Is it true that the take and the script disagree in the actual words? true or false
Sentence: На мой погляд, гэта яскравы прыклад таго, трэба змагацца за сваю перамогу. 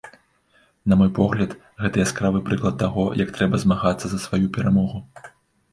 true